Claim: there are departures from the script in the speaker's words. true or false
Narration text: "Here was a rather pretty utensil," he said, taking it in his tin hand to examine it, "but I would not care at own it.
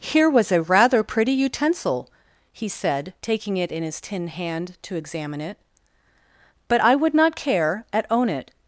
false